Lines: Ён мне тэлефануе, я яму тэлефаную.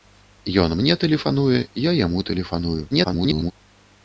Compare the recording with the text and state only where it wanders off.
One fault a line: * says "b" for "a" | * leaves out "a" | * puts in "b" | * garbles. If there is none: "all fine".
* garbles